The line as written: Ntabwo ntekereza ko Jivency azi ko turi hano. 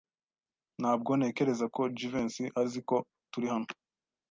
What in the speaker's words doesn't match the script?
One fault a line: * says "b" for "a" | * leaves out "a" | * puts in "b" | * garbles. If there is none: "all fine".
all fine